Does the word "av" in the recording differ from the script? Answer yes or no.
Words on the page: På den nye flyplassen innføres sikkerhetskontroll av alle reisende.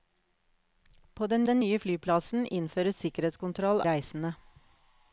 yes